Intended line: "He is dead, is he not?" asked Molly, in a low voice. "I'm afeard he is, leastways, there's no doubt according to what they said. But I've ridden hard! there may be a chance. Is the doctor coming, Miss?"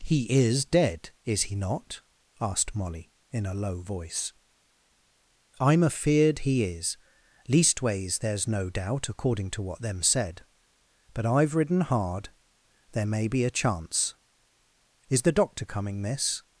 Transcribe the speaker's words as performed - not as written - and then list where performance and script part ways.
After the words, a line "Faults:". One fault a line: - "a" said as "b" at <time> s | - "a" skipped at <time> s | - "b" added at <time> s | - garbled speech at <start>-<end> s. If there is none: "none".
"He is dead, is he not?" asked Molly, in a low voice. "I'm afeard he is, leastways, there's no doubt according to what them said. But I've ridden hard! there may be a chance. Is the doctor coming, Miss?"
Faults:
- "they" said as "them" at 9.8 s